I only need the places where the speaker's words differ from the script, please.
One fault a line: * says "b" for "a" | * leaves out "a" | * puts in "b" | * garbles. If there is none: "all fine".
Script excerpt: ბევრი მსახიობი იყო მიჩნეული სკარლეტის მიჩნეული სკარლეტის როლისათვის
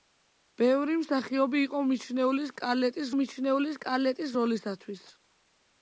all fine